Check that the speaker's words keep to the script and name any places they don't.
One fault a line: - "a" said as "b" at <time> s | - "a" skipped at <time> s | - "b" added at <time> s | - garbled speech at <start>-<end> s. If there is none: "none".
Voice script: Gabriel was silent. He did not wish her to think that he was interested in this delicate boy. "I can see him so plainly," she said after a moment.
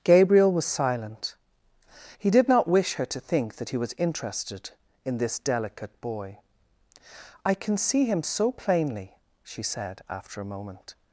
none